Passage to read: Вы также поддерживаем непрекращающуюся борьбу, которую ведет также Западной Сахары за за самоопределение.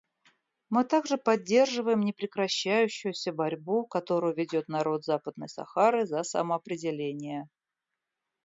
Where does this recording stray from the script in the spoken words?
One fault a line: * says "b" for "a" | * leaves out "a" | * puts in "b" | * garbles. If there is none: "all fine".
* says "Мы" for "Вы"
* says "народ" for "также"
* leaves out "за"